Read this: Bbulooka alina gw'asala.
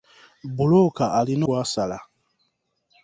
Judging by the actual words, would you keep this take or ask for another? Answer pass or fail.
pass